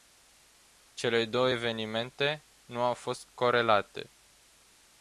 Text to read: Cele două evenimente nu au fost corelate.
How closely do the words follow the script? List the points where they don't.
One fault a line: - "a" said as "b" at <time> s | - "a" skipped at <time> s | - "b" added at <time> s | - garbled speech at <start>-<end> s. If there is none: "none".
none